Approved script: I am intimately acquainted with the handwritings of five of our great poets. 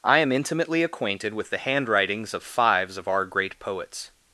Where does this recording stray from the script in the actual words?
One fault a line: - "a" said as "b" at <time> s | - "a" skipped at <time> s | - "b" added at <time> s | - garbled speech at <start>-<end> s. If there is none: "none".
- "five" said as "fives" at 2.4 s